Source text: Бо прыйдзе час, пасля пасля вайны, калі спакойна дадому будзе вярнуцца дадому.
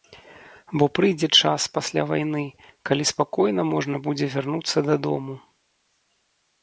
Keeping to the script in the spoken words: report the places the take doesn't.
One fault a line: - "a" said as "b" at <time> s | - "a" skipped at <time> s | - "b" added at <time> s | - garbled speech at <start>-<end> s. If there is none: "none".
- "пасля" skipped at 2.0 s
- "дадому" said as "можна" at 3.8 s